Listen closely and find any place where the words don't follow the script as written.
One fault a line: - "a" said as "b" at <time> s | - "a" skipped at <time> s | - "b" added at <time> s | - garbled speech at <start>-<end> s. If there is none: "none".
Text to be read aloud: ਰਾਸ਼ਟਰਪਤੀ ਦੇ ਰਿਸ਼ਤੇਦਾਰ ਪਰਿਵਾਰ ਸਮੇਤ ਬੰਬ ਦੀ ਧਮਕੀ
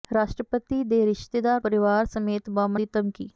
none